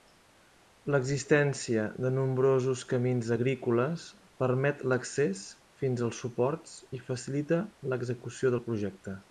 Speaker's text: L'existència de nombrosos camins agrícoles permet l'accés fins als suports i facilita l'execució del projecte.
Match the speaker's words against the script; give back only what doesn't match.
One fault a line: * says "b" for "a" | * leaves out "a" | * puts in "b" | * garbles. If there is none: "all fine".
all fine